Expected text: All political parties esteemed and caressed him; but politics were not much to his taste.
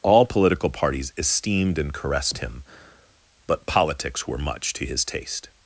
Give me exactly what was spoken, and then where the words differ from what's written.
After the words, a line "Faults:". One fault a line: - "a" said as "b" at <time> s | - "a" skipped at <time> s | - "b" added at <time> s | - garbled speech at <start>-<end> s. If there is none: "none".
All political parties esteemed and caressed him; but politics were much to his taste.
Faults:
- "not" skipped at 4.4 s